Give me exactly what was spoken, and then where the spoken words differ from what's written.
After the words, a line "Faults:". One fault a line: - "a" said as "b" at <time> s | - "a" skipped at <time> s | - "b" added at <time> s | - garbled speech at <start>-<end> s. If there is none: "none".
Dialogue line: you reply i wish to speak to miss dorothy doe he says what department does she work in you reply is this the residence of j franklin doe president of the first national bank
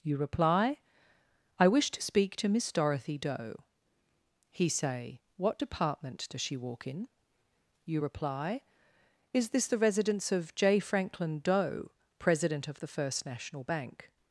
you reply i wish to speak to miss dorothy doe he say what department does she walk in you reply is this the residence of j franklin doe president of the first national bank
Faults:
- "says" said as "say" at 4.7 s
- "work" said as "walk" at 6.6 s